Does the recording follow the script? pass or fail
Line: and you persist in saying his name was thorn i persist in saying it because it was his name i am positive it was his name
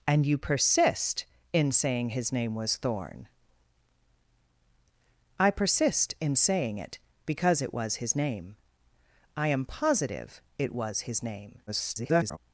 fail